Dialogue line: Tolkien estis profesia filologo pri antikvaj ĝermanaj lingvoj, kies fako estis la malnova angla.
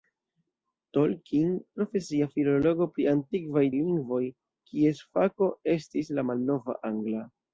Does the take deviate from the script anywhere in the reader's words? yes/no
yes